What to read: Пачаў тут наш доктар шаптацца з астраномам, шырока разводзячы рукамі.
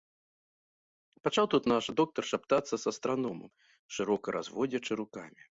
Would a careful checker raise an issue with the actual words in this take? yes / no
no